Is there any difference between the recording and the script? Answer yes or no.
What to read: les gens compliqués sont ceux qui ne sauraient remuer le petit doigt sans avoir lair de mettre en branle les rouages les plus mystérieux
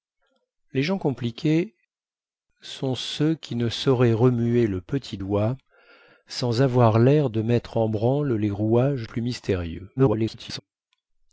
yes